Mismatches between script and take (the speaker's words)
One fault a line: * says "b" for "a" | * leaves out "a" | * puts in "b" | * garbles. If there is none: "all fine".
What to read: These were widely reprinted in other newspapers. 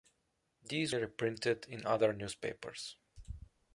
* leaves out "were widely"